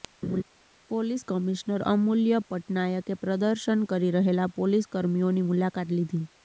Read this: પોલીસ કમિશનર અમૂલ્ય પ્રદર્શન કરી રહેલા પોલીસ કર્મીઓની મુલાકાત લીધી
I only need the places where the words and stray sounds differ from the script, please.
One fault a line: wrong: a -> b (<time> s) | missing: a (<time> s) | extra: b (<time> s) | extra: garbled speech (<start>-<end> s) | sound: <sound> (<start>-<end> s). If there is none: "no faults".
sound: laugh (0.2-0.4 s)
extra: પટનાયકે (2.5 s)